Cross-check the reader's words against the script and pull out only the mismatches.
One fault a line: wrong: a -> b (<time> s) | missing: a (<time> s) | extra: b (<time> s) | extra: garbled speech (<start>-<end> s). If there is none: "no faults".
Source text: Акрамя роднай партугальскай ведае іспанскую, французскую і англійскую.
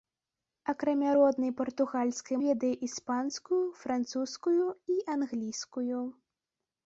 no faults